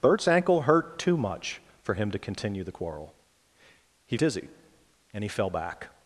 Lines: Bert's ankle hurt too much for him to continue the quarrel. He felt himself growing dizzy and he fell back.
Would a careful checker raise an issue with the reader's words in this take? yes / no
yes